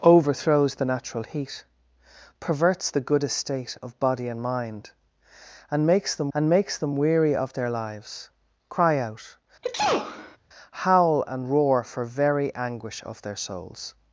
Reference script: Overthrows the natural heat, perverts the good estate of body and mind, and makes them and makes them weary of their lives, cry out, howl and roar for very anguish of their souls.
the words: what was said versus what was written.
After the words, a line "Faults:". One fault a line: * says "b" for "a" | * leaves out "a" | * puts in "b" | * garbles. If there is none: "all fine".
Overthrows the natural heat, perverts the good estate of body and mind, and makes them and makes them weary of their lives, cry out, howl and roar for very anguish of their souls.
Faults:
all fine